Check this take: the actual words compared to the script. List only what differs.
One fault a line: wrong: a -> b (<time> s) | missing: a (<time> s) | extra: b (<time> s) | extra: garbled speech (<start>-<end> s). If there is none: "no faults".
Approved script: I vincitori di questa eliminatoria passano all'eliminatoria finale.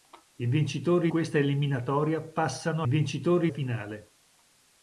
missing: di (1.1 s)
wrong: all'eliminatoria -> vincitori (2.9 s)